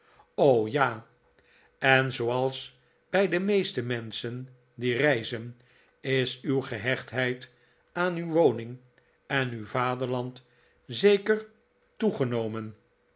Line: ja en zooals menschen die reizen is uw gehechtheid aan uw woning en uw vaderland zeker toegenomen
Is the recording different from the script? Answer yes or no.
yes